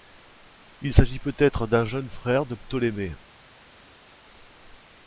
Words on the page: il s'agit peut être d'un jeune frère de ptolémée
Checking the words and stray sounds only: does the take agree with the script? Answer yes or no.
yes